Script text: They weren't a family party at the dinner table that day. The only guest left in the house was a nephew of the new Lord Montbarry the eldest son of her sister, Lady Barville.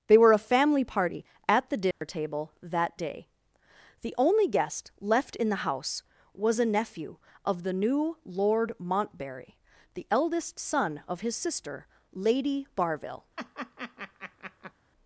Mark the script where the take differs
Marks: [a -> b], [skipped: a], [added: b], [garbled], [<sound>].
They [weren't -> were] a family party at the dinner [dropout] table that day. The only guest left in the house was a nephew of the new Lord Montbarry the eldest son of [her -> his] sister, Lady Barville. [laugh]